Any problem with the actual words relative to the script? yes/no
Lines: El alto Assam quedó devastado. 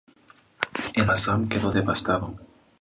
yes